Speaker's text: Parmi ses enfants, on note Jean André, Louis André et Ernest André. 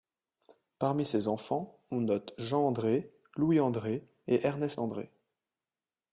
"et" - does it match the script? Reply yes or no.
yes